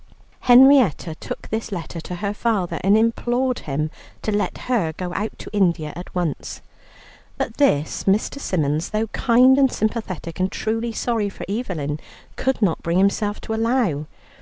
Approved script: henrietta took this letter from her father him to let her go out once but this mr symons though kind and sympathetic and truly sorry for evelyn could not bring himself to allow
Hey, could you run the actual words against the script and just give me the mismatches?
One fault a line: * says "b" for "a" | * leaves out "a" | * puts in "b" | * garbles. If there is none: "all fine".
* says "to" for "from"
* puts in "and implored"
* puts in "to india at"